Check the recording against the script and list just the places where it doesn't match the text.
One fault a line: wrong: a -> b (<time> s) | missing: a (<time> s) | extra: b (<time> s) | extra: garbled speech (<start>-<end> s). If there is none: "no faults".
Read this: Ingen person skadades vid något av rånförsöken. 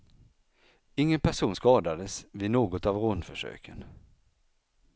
no faults